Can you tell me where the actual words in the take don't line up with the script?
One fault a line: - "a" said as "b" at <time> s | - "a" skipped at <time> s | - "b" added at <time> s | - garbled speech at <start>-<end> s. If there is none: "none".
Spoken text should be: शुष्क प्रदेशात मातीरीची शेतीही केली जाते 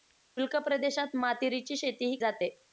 - "केली" skipped at 2.2 s